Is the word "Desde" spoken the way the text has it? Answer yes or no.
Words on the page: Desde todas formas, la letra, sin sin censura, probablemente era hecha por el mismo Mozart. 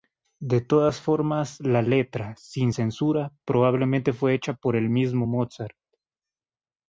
no